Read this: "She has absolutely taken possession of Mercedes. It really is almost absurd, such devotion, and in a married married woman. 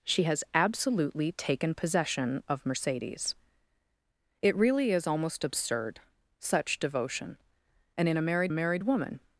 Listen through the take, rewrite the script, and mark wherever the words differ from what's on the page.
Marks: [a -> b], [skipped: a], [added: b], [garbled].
"She has absolutely taken possession of Mercedes. It really is almost absurd, such devotion, and in a married married woman.